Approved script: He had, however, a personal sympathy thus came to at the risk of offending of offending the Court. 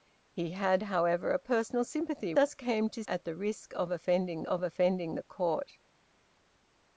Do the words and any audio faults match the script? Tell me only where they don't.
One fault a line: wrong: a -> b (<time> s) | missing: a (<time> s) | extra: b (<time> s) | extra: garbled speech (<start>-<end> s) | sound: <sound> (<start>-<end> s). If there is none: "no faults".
no faults